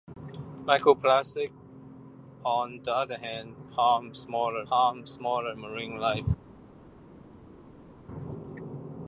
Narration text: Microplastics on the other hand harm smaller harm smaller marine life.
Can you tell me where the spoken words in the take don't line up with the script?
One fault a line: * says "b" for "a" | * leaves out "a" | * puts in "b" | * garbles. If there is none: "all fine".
all fine